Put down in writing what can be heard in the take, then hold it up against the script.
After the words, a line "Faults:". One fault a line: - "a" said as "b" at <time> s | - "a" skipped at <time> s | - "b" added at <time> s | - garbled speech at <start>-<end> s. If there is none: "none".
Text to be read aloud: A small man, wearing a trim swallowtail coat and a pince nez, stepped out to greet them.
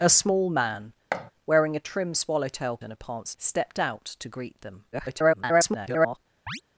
A small man, wearing a trim swallowtail and a pince stepped out to greet them. [garbled]
Faults:
- "coat" skipped at 2.8 s
- "nez" skipped at 3.4 s
- garbled speech at 4.9-6.2 s